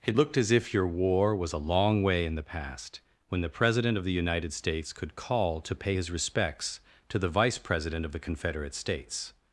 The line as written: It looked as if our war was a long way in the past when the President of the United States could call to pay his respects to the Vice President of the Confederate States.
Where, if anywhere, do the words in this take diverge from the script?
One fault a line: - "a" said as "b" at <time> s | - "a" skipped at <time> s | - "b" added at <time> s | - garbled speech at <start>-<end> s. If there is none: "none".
- "our" said as "your" at 0.7 s